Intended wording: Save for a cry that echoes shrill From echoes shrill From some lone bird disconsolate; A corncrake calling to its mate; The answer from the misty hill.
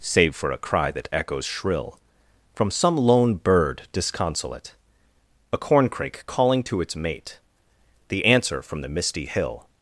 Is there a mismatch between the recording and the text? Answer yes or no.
yes